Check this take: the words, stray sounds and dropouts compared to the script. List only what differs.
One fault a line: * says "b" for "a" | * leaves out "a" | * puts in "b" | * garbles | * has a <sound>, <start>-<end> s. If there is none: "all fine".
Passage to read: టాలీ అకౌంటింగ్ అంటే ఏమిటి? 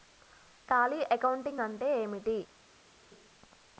all fine